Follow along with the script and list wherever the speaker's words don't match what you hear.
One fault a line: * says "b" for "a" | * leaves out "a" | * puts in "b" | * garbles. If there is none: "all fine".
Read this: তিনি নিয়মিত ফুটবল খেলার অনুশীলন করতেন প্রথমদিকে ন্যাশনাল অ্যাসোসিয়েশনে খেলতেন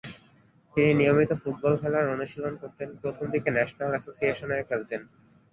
all fine